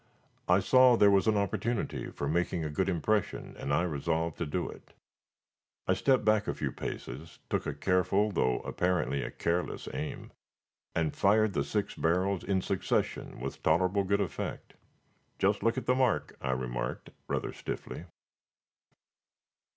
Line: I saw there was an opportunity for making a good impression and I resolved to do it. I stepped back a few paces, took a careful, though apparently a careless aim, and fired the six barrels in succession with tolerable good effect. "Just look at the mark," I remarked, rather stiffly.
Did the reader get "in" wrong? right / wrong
right